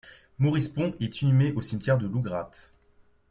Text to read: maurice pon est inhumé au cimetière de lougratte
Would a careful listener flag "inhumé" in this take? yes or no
no